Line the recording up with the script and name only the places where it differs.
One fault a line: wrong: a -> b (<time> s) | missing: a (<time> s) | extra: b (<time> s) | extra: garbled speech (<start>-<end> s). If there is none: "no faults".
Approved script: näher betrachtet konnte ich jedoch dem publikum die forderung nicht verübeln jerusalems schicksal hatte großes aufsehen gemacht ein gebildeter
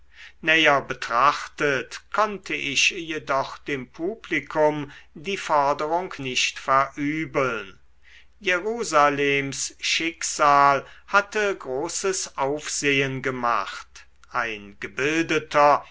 no faults